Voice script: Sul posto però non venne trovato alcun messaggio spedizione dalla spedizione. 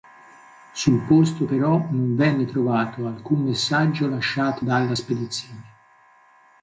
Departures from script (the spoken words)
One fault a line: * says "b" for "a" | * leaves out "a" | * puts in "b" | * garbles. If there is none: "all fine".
* says "lasciato" for "spedizione"